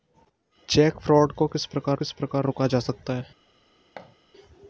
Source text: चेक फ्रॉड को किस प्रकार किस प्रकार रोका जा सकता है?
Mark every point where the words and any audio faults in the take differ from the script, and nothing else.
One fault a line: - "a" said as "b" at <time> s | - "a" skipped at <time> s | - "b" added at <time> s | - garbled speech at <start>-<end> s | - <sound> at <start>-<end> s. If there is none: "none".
- thud at 4.0-4.2 s